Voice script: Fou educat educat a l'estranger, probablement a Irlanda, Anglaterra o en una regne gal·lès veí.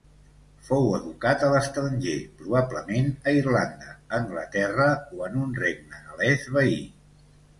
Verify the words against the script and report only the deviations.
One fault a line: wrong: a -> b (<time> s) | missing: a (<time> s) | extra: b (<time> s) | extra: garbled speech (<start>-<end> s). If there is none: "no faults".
missing: educat (1.4 s)
wrong: una -> un (5.4 s)